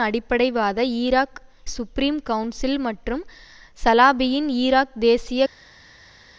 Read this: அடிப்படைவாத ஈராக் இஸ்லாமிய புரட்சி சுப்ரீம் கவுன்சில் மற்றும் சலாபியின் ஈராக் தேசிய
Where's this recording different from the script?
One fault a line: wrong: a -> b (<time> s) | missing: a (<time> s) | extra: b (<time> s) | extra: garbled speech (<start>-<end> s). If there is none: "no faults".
missing: இஸ்லாமிய புரட்சி (1.4 s)